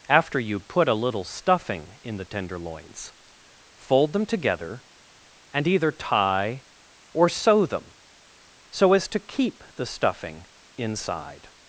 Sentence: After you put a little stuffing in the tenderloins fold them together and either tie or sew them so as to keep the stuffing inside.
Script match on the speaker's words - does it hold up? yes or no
yes